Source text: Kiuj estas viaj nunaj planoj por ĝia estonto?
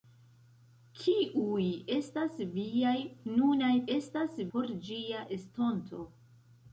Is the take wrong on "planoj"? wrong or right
wrong